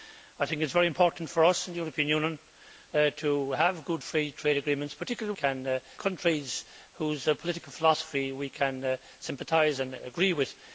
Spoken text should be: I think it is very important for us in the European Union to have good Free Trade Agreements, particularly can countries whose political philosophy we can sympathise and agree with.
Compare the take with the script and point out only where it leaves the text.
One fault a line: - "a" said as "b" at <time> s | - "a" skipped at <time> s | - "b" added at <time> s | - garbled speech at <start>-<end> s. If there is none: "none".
none